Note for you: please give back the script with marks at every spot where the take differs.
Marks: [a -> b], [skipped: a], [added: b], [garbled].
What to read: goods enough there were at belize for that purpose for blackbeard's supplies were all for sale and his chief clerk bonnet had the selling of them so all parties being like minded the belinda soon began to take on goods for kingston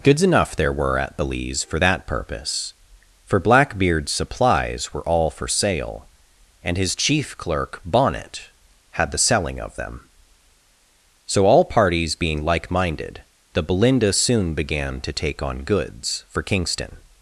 goods enough there were at belize for that purpose for blackbeard's supplies were all for sale and his chief clerk bonnet had the selling of them so all parties being like minded the belinda soon began to take on goods for kingston